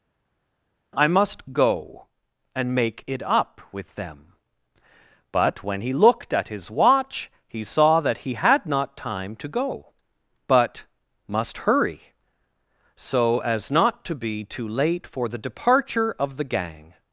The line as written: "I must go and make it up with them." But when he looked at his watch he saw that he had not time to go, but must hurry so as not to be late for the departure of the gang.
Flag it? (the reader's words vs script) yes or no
yes